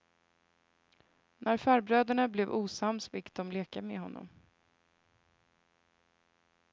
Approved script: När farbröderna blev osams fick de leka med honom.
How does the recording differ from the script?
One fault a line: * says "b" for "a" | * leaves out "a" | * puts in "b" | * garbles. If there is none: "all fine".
all fine